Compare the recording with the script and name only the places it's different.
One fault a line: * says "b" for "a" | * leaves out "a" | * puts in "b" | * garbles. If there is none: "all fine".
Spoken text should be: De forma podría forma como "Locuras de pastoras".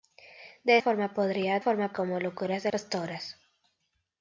all fine